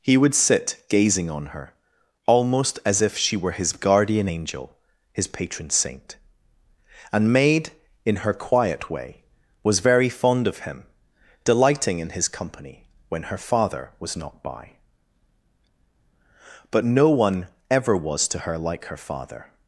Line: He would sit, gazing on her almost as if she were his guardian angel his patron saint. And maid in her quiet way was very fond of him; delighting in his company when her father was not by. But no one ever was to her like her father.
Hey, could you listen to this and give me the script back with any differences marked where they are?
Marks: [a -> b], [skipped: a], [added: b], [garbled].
He would sit, gazing on her almost as if she were his guardian angel his patron saint. And maid in her quiet way was very fond of him; delighting in his company when her father was not by. But no one ever was to her like her father.